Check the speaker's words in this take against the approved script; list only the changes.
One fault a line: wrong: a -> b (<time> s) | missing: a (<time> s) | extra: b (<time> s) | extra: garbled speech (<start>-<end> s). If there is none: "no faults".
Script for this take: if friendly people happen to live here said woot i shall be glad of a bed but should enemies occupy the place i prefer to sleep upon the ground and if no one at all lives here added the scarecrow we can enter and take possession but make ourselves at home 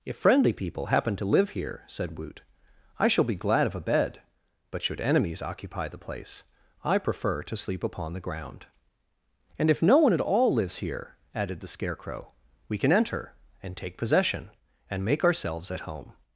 wrong: but -> and (14.9 s)